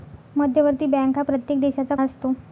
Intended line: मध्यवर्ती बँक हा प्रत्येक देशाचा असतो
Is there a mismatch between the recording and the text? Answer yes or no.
no